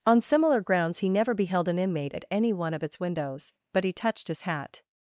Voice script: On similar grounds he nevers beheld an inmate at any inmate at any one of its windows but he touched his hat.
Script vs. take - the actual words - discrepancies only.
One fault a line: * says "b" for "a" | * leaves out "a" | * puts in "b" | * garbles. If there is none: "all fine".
* says "never" for "nevers"
* leaves out "inmate at any"